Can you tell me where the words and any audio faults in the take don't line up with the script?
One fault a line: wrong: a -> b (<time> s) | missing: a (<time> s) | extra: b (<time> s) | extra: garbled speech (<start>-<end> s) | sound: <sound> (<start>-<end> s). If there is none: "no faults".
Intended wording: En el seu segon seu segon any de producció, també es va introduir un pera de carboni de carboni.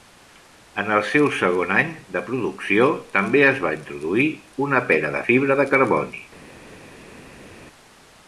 missing: seu segon (1.7 s)
wrong: un -> una (4.7 s)
wrong: carboni -> fibra (5.3 s)